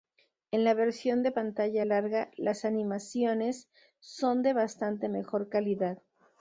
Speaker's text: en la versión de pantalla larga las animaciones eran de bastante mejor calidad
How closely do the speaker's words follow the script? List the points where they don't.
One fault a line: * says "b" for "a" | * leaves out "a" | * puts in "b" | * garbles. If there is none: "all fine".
* says "son" for "eran"